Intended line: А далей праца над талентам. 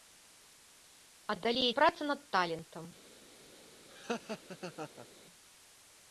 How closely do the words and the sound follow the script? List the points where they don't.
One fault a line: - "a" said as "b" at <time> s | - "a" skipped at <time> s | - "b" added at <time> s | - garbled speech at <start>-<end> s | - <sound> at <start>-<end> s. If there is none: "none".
- laugh at 3.9-5.1 s